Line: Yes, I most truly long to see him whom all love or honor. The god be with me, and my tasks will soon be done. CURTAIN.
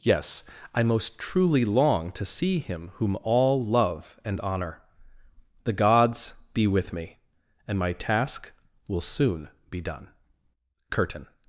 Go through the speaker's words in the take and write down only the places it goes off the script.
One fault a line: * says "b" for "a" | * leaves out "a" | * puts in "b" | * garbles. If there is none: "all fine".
* says "and" for "or"
* says "gods" for "god"
* says "task" for "tasks"